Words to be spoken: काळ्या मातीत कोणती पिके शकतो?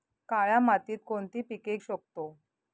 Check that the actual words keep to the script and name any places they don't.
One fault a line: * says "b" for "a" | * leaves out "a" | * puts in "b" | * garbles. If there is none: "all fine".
all fine